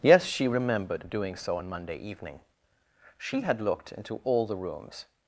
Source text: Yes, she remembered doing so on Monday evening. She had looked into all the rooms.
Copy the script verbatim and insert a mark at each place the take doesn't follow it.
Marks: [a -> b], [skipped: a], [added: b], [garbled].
Yes, she remembered doing so on Monday evening. She had looked into all the rooms.